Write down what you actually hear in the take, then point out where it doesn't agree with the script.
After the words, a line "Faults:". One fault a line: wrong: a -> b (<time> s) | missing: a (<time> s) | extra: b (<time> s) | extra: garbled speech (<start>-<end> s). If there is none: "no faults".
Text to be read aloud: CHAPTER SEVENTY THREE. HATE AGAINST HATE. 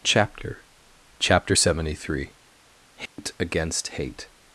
CHAPTER cHAPTER SEVENTY THREE. HATE AGAINST HATE.
Faults:
extra: cHAPTER (1.2 s)